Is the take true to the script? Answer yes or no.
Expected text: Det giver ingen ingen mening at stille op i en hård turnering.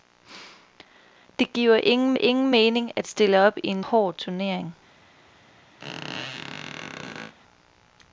yes